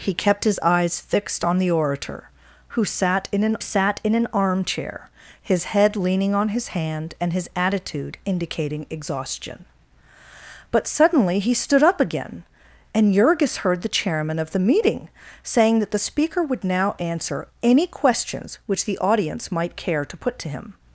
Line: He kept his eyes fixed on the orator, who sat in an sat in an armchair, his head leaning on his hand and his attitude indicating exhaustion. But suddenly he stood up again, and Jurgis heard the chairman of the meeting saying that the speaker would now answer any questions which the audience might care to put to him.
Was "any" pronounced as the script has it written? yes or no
yes